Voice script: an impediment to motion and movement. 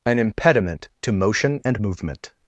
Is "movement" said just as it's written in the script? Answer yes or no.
yes